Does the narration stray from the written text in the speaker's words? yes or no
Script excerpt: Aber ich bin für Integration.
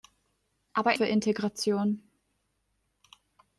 yes